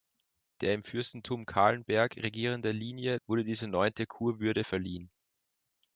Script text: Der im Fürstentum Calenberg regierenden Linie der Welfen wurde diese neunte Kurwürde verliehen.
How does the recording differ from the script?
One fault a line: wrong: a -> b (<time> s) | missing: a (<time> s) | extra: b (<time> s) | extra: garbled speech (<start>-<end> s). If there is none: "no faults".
missing: der Welfen (3.2 s)